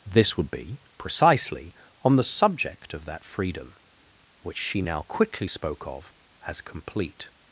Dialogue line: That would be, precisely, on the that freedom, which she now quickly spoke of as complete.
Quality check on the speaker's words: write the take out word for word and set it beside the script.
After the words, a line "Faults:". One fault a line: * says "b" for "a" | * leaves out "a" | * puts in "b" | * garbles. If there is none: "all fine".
This would be, precisely, on the subject of that freedom, which she now quickly spoke of as complete.
Faults:
* says "This" for "That"
* puts in "subject of"